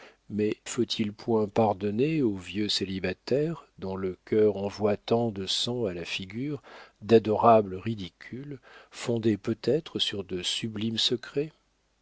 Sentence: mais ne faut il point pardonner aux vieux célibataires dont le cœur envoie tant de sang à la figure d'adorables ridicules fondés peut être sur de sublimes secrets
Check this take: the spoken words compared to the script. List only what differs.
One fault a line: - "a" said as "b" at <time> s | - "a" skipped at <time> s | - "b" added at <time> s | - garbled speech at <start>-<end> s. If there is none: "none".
- "ne" skipped at 0.6 s